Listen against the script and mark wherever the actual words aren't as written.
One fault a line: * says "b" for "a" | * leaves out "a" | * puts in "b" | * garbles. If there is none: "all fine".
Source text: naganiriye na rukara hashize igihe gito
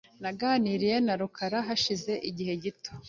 all fine